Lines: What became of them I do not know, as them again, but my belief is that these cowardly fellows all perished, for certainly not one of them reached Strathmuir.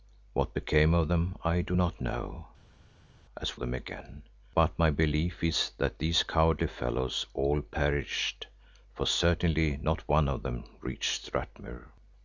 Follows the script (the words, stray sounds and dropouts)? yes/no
yes